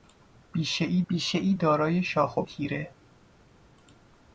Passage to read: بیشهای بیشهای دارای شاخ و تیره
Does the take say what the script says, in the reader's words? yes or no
yes